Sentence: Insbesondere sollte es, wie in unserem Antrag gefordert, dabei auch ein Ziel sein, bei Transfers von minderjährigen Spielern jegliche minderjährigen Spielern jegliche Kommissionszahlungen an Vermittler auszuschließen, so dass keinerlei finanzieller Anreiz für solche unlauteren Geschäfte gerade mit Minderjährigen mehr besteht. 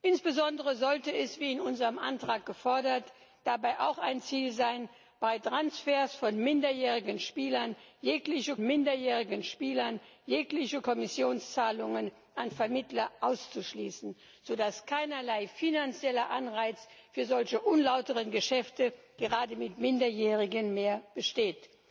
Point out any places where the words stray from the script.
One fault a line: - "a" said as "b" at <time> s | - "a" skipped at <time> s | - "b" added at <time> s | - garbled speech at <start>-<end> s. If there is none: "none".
none